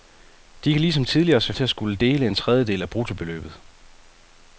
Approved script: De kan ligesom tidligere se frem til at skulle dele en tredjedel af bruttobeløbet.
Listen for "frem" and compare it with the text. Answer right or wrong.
wrong